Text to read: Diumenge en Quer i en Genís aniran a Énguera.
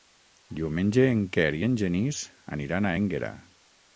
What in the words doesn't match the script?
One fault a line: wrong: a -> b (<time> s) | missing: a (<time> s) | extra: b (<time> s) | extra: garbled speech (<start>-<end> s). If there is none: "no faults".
no faults